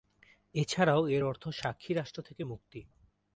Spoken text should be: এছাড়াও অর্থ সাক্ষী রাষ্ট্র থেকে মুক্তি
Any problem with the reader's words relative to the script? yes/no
yes